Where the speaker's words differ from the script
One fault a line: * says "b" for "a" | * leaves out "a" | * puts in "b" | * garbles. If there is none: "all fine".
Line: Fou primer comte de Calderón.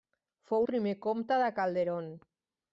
all fine